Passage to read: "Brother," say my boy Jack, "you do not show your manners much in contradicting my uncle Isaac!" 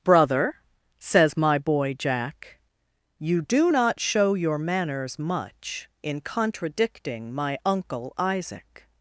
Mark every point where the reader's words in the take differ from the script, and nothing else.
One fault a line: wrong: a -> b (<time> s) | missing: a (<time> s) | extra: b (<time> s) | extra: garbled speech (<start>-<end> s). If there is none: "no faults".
wrong: say -> says (1.0 s)